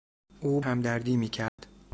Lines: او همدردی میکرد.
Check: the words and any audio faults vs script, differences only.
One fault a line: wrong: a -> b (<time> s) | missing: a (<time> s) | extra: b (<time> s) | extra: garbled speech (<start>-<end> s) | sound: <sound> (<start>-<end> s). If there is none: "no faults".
sound: dropout (1.5-1.6 s)